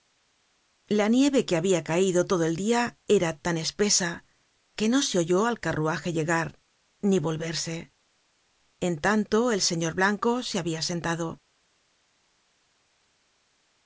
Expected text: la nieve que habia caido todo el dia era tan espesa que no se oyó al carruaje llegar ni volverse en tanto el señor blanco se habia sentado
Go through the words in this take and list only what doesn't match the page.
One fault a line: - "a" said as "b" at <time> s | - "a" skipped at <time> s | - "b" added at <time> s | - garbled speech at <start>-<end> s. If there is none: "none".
none